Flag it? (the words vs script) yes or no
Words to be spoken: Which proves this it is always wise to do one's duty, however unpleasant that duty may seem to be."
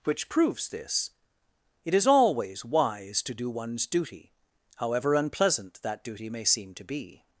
no